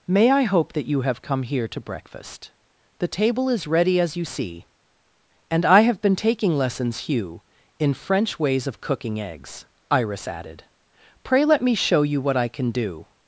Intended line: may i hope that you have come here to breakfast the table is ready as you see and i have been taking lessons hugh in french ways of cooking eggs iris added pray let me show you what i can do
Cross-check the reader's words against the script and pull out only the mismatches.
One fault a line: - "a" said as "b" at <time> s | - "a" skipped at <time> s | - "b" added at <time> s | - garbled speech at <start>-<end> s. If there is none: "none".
none